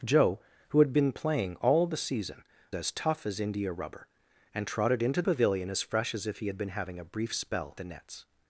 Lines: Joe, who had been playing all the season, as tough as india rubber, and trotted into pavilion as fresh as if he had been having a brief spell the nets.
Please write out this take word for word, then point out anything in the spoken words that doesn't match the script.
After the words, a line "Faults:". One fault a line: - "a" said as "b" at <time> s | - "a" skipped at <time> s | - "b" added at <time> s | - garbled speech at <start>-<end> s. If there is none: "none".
Joe, who had been playing all the season, as tough as india rubber, and trotted into pavilion as fresh as if he had been having a brief spell the nets.
Faults:
none